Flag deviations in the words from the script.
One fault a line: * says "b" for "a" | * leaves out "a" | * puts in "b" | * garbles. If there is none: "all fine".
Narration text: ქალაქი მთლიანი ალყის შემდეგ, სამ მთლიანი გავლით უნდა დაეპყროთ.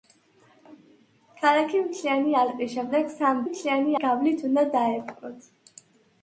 all fine